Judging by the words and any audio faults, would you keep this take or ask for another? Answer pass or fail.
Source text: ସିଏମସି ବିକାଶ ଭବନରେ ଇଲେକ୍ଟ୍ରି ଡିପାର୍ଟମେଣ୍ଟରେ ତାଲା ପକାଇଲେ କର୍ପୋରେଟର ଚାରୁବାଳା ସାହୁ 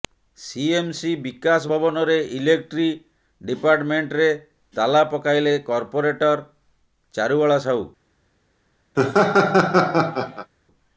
fail